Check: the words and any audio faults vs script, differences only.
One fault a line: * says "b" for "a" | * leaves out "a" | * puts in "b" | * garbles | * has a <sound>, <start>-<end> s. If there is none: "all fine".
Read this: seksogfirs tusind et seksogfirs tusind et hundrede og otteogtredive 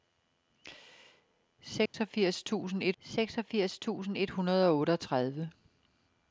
* has a dropout, 1.9-1.9 s